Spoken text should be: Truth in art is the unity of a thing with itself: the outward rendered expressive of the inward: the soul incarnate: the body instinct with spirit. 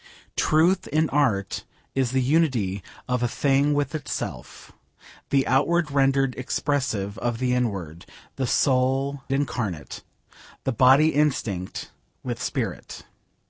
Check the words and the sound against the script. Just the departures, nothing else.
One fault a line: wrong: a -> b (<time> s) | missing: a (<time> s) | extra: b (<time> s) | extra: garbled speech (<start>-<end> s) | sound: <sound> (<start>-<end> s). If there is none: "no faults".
no faults